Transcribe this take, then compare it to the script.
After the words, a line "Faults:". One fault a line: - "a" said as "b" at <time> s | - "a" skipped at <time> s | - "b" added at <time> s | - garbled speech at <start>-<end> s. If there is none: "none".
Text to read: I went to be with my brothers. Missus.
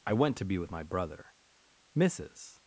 I went to be with my brother. Missus.
Faults:
- "brothers" said as "brother" at 0.8 s